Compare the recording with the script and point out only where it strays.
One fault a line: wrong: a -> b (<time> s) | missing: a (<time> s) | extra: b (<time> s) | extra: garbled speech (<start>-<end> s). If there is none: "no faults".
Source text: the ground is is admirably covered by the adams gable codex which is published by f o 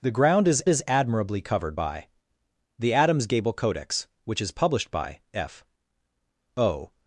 no faults